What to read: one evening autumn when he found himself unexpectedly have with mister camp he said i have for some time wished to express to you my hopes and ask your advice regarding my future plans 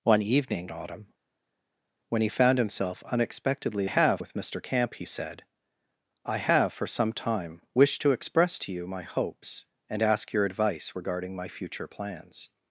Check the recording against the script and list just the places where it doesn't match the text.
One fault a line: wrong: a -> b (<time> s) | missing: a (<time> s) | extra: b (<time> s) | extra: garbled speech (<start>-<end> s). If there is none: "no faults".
no faults